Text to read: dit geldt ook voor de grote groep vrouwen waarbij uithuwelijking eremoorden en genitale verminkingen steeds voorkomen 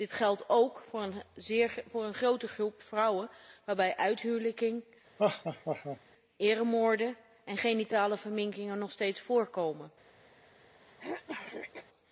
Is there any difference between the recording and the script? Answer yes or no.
yes